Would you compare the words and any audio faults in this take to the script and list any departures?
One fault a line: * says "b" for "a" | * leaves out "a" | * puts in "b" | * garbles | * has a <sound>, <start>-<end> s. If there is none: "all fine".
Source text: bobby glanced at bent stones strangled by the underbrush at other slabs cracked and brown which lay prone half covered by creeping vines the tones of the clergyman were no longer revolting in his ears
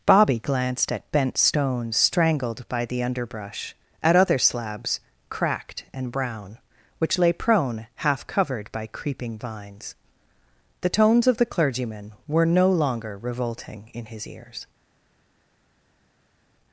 all fine